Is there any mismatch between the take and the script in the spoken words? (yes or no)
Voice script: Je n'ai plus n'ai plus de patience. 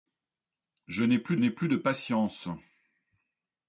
no